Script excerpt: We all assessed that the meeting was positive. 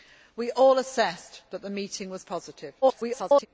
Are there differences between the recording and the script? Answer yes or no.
yes